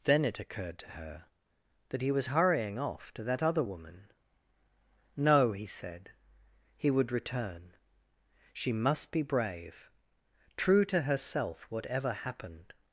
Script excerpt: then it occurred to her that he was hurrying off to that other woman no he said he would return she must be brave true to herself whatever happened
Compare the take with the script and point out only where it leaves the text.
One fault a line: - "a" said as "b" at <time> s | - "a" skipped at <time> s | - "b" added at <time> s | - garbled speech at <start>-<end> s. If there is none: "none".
none